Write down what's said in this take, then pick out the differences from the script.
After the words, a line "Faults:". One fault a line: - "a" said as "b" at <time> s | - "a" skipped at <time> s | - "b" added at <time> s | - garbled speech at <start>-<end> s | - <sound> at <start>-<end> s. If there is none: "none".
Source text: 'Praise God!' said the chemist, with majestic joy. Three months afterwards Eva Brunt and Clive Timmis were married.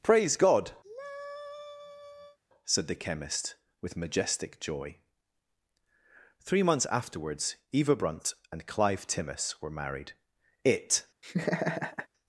'Praise God!' said the chemist, with majestic joy. Three months afterwards Eva Brunt and Clive Timmis were married. It
Faults:
- sigh at 0.8-2.4 s
- "It" added at 10.6 s
- laugh at 11.2-12.1 s